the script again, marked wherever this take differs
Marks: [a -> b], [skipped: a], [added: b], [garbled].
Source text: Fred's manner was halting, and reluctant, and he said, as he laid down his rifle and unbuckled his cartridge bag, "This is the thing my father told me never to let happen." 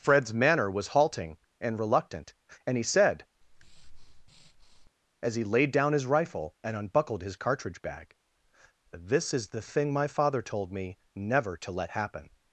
Fred's manner was halting, and reluctant, and he said, as he laid down his rifle and unbuckled his cartridge bag, "This is the thing my father told me never to let happen."